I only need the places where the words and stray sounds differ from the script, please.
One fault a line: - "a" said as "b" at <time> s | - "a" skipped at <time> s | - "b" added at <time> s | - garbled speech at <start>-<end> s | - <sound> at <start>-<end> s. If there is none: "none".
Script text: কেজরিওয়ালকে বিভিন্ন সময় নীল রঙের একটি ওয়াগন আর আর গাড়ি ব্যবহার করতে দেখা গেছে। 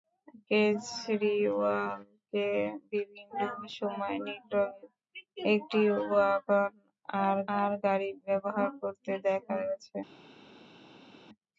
none